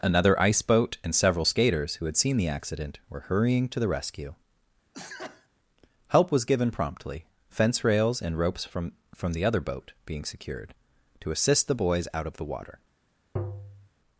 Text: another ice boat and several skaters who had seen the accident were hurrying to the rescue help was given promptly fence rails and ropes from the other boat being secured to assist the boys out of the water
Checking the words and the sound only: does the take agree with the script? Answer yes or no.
no